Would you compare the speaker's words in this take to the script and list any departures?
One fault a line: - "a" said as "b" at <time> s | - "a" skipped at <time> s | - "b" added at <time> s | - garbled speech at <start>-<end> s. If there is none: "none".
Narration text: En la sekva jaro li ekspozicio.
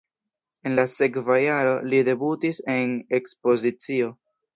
- "debutis en" added at 2.1 s